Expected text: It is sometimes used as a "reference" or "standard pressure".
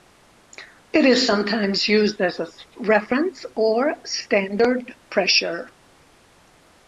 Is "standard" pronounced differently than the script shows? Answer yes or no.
no